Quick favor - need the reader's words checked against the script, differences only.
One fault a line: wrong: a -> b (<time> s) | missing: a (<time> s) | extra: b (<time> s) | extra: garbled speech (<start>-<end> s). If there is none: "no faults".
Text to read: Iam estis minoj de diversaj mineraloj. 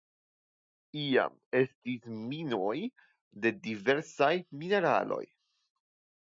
no faults